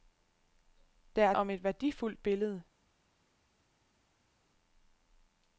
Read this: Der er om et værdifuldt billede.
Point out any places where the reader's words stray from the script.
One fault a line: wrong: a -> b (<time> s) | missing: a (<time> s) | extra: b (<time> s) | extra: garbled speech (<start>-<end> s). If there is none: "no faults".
no faults